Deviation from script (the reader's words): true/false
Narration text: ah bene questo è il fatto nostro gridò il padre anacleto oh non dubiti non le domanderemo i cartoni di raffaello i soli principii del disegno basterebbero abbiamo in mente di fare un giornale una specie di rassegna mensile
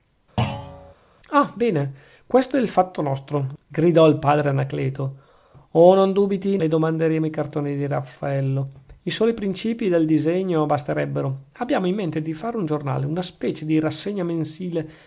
true